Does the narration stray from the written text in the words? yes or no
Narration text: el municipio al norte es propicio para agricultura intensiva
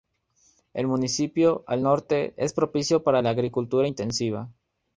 yes